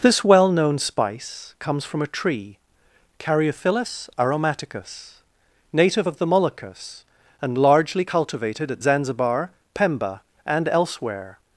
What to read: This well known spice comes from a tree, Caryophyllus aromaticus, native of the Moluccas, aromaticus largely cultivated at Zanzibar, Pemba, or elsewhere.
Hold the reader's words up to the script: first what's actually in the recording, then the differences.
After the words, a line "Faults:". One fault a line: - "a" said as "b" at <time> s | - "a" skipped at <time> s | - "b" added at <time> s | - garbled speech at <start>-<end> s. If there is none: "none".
This well known spice comes from a tree, Caryophyllus aromaticus, native of the Moluccas, and largely cultivated at Zanzibar, Pemba, and elsewhere.
Faults:
- "aromaticus" said as "and" at 7.4 s
- "or" said as "and" at 10.5 s